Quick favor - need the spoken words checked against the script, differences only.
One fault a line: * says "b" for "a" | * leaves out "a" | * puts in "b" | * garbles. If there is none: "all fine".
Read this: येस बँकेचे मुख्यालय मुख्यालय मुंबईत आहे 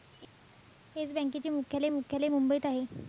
all fine